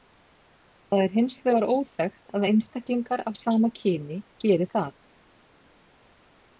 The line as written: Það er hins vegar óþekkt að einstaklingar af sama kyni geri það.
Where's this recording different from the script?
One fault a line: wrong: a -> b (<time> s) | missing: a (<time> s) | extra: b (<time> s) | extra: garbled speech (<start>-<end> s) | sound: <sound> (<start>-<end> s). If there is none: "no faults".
no faults